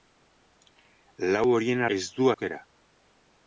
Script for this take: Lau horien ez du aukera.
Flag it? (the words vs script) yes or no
no